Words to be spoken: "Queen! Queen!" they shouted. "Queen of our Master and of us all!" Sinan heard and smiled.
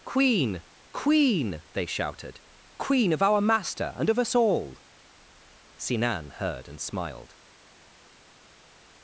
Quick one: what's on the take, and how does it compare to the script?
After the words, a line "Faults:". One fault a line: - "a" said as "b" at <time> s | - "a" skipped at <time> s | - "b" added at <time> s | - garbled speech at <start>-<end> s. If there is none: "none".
"Queen! Queen!" they shouted. "Queen of our Master and of us all!" Sinan heard and smiled.
Faults:
none